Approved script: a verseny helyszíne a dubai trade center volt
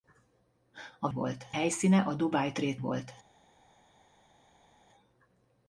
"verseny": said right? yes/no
no